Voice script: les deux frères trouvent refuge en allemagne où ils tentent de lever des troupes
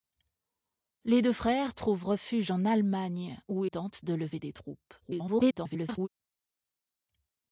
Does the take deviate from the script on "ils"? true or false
true